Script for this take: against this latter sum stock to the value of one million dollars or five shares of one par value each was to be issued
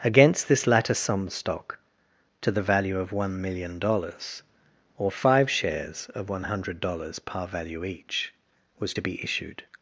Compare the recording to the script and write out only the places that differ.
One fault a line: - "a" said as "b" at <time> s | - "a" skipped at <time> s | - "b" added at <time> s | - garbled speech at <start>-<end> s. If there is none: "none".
- "hundred dollars" added at 6.5 s